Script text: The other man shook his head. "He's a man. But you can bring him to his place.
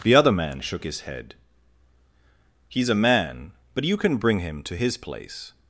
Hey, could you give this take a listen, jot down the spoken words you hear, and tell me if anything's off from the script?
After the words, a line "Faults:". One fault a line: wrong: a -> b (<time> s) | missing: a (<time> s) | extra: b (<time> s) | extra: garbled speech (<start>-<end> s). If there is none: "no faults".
The other man shook his head. "He's a man. But you can bring him to his place.
Faults:
no faults